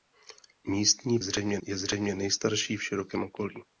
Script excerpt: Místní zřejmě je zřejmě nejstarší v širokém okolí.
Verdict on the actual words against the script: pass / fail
pass